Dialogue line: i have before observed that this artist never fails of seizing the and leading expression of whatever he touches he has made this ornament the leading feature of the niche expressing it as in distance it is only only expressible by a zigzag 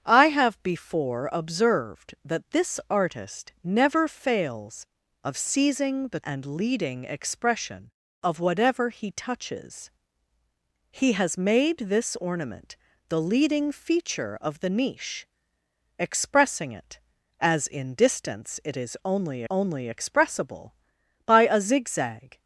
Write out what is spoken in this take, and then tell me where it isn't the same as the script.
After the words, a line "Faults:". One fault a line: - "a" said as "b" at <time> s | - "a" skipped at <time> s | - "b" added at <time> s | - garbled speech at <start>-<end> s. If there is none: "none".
i have before observed that this artist never fails of seizing the and leading expression of whatever he touches he has made this ornament the leading feature of the niche expressing it as in distance it is only only expressible by a zigzag
Faults:
none